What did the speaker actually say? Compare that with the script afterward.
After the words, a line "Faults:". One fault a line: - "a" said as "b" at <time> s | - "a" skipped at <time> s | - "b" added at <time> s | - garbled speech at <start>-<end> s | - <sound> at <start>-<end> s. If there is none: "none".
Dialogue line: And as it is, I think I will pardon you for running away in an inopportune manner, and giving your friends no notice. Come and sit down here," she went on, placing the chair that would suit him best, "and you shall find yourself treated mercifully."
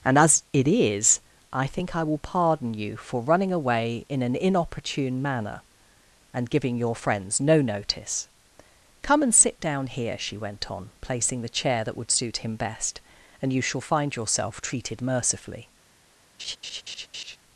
And as it is, I think I will pardon you for running away in an inopportune manner, and giving your friends no notice. Come and sit down here," she went on, placing the chair that would suit him best, "and you shall find yourself treated mercifully."
Faults:
- laugh at 16.4-17.4 s